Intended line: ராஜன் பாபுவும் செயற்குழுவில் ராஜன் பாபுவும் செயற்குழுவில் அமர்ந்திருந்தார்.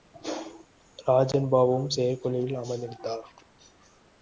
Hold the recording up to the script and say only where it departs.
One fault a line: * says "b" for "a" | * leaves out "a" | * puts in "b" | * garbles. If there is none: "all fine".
* leaves out "ராஜன் பாபுவும் செயற்குழுவில்"